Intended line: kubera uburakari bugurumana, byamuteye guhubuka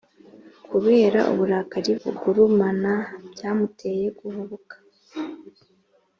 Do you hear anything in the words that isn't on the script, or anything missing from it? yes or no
no